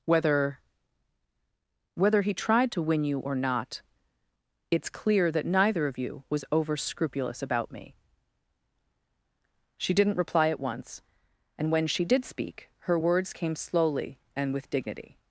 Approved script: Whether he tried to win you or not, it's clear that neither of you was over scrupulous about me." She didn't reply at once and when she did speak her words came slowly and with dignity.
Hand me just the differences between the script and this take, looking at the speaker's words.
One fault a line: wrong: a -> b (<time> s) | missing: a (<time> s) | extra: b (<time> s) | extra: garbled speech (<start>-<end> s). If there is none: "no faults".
extra: whether (1.9 s)